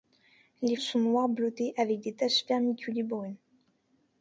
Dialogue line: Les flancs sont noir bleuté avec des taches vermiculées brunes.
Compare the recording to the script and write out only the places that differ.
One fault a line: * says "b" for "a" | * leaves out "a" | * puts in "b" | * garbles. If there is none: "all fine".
* leaves out "flancs"